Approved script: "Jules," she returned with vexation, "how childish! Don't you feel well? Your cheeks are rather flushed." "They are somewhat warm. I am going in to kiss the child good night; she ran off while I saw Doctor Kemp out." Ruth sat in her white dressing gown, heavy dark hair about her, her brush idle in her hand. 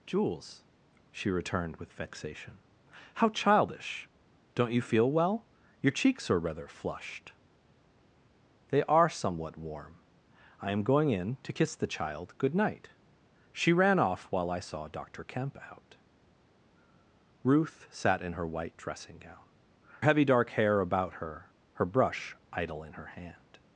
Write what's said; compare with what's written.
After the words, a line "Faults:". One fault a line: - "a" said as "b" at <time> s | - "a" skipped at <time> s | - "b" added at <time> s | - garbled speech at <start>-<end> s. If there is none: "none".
"Jules," she returned with vexation, "how childish! Don't you feel well? Your cheeks are rather flushed." "They are somewhat warm. I am going in to kiss the child good night; she ran off while I saw Doctor Kemp out." Ruth sat in her white dressing gown, heavy dark hair about her, her brush idle in her hand.
Faults:
none